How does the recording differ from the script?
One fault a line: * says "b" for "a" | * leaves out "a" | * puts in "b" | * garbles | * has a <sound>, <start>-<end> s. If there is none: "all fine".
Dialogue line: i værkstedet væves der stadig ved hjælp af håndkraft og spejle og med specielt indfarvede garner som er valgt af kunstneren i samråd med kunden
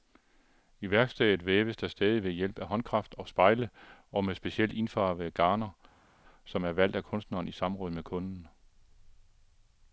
all fine